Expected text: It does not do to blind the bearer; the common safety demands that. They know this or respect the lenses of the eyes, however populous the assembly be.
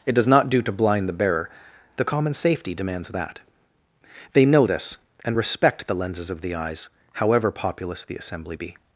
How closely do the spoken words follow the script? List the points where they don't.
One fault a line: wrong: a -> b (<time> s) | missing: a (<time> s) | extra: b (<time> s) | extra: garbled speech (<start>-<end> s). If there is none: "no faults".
wrong: or -> and (5.3 s)